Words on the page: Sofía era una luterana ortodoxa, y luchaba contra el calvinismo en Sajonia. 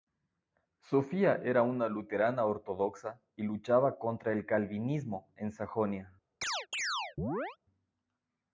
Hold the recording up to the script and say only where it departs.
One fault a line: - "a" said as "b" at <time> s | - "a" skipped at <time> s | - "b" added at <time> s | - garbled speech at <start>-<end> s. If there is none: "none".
none